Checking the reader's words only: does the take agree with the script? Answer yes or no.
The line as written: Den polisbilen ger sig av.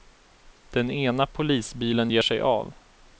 no